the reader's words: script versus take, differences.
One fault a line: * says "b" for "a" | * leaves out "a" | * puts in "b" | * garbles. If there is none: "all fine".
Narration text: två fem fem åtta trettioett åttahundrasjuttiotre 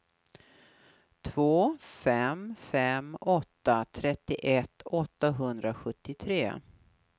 all fine